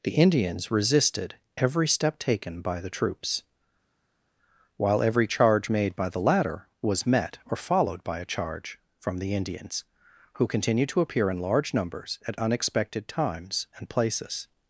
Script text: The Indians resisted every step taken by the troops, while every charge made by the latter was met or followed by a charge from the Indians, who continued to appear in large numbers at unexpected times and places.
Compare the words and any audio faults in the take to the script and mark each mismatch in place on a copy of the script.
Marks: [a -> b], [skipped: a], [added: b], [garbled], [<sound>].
The Indians resisted every step taken by the troops, while every charge made by the latter was met or followed by a charge from the Indians, who continued to appear in large numbers at unexpected times and places.